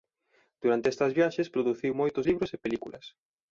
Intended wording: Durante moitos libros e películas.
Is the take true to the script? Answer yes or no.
no